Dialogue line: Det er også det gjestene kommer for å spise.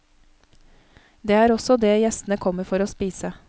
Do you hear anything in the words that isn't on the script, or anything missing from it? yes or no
no